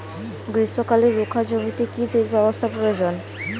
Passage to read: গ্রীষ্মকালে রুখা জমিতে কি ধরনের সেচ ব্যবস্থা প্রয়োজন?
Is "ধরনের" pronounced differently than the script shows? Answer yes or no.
yes